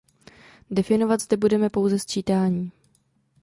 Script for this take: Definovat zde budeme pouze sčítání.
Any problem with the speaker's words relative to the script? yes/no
no